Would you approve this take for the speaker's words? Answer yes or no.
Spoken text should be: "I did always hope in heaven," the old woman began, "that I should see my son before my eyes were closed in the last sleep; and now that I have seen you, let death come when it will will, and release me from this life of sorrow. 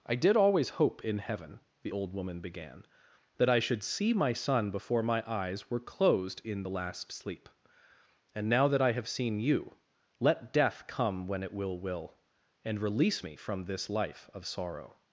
yes